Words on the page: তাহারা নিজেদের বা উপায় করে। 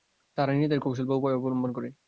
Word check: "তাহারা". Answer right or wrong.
right